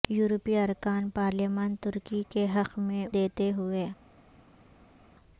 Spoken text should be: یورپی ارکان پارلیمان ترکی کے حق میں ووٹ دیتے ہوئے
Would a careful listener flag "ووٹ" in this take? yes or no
yes